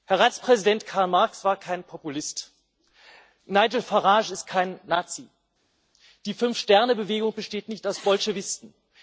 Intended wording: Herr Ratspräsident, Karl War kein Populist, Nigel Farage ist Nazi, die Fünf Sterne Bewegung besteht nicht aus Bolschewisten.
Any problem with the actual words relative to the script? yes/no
yes